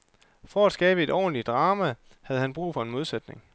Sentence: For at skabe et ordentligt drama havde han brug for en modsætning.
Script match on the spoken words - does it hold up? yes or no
yes